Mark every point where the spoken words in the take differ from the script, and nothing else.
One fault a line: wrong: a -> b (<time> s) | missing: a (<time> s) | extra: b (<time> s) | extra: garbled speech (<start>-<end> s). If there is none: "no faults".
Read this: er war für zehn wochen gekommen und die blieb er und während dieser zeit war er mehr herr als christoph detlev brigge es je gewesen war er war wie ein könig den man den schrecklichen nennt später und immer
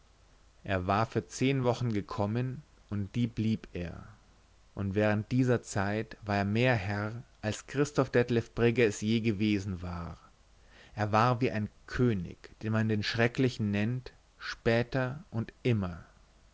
no faults